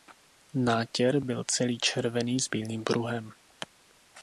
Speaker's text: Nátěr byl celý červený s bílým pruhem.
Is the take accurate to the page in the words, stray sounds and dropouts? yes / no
yes